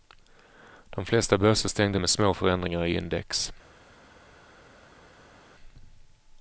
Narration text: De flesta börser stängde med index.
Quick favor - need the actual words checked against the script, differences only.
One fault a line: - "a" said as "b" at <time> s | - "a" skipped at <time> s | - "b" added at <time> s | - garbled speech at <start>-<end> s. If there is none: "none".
- "små förändringar i" added at 2.1 s